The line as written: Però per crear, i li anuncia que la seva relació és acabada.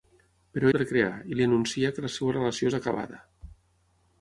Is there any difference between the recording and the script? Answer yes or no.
no